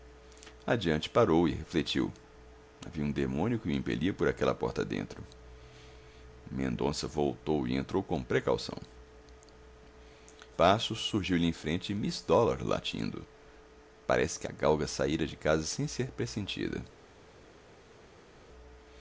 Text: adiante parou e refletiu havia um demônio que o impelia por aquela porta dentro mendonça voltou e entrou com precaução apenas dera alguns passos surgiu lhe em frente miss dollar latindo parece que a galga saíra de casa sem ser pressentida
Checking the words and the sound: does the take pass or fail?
fail